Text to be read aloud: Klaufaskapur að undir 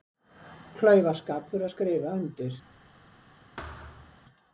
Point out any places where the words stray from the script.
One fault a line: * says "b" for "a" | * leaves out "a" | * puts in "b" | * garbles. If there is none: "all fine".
* puts in "skrifa"